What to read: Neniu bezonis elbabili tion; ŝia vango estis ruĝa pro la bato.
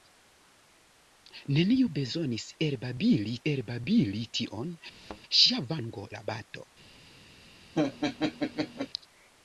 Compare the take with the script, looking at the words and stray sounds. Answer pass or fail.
fail